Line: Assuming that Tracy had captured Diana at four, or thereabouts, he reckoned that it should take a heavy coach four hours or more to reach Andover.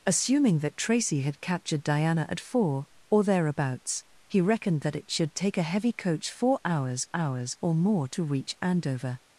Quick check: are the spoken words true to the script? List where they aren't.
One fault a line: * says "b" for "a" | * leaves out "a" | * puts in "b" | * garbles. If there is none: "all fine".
* puts in "hours"